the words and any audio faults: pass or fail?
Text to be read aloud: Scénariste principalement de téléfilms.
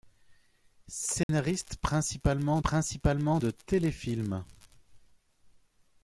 fail